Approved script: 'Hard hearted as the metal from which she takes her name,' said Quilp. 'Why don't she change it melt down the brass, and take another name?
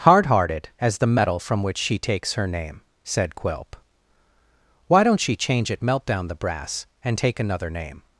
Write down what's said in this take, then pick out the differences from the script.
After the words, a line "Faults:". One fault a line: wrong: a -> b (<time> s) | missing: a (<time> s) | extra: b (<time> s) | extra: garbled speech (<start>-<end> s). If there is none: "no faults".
'Hard hearted as the metal from which she takes her name,' said Quilp. 'Why don't she change it melt down the brass, and take another name?
Faults:
no faults